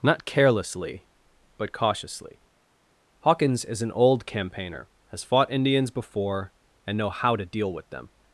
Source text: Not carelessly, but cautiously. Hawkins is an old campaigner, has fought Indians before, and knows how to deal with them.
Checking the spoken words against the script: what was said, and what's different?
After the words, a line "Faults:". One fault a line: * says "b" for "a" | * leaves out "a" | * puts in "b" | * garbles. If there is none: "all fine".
Not carelessly, but cautiously. Hawkins is an old campaigner, has fought Indians before, and know how to deal with them.
Faults:
* says "know" for "knows"